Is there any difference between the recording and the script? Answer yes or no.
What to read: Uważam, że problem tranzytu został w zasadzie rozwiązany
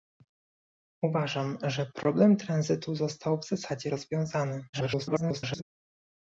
yes